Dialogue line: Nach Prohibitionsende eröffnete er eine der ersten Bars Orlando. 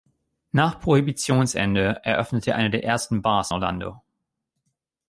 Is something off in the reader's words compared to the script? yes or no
no